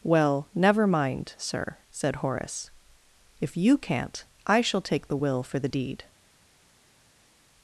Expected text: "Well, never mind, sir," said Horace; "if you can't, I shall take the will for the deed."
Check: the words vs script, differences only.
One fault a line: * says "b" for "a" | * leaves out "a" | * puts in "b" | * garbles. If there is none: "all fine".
all fine